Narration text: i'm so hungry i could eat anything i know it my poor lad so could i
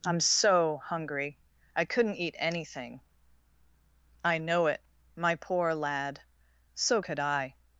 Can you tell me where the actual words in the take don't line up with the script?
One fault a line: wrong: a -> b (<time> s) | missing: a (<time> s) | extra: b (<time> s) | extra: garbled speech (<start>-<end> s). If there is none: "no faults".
wrong: could -> couldn't (1.9 s)